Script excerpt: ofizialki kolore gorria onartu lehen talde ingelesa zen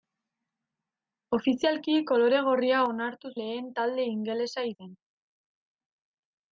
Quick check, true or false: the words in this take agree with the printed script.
true